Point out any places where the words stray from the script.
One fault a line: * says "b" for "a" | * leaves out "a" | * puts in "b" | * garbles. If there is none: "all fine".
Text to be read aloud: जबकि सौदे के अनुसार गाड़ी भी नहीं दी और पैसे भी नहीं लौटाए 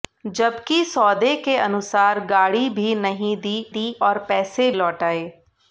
* puts in "दी"
* leaves out "भी नहीं"